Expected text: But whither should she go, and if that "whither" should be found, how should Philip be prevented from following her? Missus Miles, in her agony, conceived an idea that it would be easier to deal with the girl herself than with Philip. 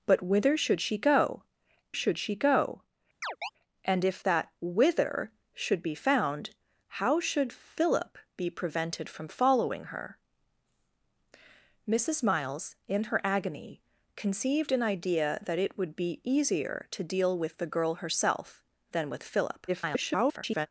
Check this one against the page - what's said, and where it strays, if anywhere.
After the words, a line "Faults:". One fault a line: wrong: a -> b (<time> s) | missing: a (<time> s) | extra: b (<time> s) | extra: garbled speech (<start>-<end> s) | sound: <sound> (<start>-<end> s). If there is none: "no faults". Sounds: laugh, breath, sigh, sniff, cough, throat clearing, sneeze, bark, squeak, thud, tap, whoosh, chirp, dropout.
But whither should she go should she go, and if that "whither" should be found, how should Philip be prevented from following her? Missus Miles, in her agony, conceived an idea that it would be easier to deal with the girl herself than with Philip. [garbled]
Faults:
extra: should she go (1.9 s)
sound: chirp (3.2-3.5 s)
extra: garbled speech (19.7-20.7 s)